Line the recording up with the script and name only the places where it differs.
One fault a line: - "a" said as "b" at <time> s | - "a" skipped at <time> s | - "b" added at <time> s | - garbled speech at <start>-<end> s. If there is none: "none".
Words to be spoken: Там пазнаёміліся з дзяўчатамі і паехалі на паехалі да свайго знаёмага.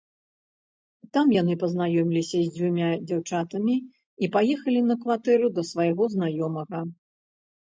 - "яны" added at 1.4 s
- "дзвюма" added at 2.6 s
- "паехалі" said as "кватэру" at 5.0 s